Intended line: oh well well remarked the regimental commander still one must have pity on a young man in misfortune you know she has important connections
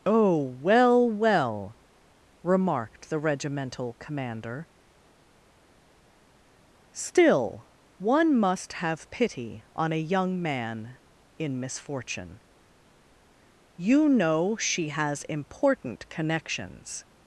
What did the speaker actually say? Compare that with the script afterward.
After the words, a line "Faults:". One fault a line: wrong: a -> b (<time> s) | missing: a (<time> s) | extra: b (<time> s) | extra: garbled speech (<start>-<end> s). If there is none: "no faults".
oh well well remarked the regimental commander still one must have pity on a young man in misfortune you know she has important connections
Faults:
no faults